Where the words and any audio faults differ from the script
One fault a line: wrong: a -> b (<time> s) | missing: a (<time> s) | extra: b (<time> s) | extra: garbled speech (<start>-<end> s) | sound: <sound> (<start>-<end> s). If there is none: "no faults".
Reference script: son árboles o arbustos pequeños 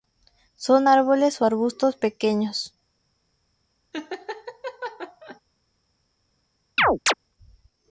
sound: laugh (3.9-5.4 s)
sound: chirp (6.8-7.1 s)